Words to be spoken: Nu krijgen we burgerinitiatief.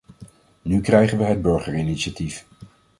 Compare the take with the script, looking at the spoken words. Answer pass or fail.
fail